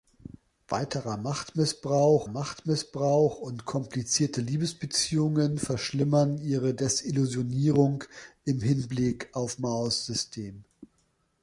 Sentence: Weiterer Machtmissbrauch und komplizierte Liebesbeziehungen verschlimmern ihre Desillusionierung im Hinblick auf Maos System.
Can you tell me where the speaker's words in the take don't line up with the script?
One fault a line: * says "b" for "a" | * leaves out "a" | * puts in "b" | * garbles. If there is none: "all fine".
* puts in "Machtmissbrauch"